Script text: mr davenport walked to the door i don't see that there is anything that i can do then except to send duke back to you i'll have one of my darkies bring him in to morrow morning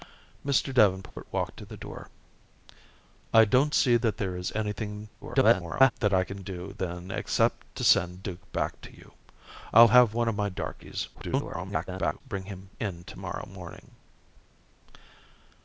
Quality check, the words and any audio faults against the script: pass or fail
fail